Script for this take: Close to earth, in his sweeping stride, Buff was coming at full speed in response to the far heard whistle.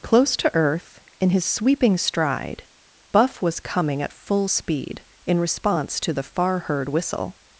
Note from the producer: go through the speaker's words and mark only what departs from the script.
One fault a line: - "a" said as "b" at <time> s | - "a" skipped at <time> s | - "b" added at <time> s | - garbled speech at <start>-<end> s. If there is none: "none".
none